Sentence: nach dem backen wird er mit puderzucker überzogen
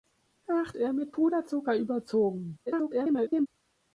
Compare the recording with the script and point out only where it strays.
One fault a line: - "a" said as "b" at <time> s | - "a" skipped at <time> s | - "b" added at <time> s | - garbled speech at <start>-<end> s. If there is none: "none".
- "dem backen wird" skipped at 0.7 s
- garbled speech at 2.7-3.5 s